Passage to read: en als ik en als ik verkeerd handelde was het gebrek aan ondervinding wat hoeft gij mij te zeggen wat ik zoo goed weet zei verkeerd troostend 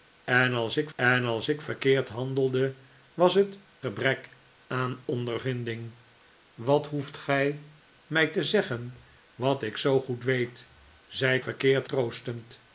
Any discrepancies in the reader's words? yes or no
no